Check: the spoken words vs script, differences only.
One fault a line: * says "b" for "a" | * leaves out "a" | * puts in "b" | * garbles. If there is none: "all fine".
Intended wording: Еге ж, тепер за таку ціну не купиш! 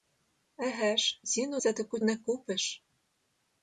* says "ціну" for "тепер"
* leaves out "ціну"